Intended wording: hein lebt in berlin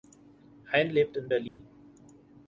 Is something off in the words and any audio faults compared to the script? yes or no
yes